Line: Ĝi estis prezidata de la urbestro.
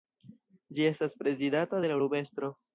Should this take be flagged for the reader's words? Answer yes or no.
yes